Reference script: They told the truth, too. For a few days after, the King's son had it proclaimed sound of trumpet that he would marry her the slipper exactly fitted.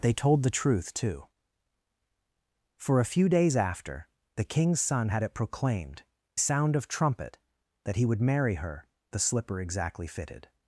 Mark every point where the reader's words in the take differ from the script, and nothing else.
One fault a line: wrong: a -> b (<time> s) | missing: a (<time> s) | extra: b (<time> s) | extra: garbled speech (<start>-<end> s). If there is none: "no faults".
no faults